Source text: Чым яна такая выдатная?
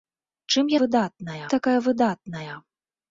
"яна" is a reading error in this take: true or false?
true